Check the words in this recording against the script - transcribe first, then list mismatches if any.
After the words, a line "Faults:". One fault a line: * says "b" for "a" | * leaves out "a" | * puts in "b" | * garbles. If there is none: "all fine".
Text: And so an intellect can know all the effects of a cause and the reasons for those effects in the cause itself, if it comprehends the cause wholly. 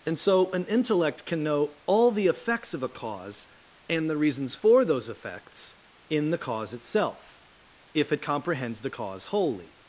And so an intellect can know all the effects of a cause and the reasons for those effects in the cause itself, if it comprehends the cause wholly.
Faults:
all fine